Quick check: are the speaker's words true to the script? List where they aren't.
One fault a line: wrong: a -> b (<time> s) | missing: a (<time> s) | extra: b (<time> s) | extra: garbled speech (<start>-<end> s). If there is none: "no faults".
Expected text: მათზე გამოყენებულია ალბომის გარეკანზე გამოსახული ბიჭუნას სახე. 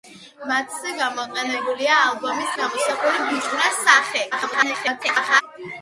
missing: გარეკანზე (2.5 s)
extra: garbled speech (4.3-5.4 s)